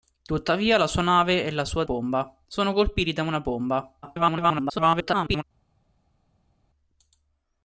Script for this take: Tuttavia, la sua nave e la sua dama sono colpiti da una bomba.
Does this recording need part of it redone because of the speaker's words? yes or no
yes